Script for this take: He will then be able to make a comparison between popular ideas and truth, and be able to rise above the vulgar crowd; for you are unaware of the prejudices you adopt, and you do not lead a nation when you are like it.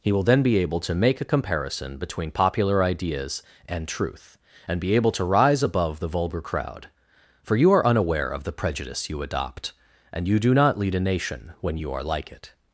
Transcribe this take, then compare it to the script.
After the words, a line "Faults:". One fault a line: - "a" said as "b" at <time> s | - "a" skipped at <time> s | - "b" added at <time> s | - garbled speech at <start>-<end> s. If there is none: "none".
He will then be able to make a comparison between popular ideas and truth, and be able to rise above the vulgar crowd; for you are unaware of the prejudice you adopt, and you do not lead a nation when you are like it.
Faults:
- "prejudices" said as "prejudice" at 8.5 s